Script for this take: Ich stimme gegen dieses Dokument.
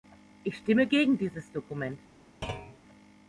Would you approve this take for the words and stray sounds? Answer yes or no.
no